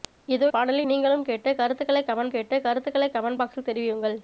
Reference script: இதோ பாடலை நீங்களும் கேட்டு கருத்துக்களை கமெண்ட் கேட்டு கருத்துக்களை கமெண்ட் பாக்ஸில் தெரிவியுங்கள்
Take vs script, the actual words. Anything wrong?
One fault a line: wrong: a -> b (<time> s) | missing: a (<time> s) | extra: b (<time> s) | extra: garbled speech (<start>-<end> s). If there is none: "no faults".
no faults